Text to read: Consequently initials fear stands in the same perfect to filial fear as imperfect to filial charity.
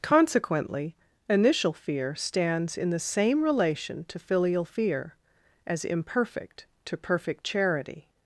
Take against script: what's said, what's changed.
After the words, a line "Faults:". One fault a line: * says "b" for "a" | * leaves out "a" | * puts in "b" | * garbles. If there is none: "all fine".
Consequently initial fear stands in the same relation to filial fear as imperfect to perfect charity.
Faults:
* says "initial" for "initials"
* says "relation" for "perfect"
* says "perfect" for "filial"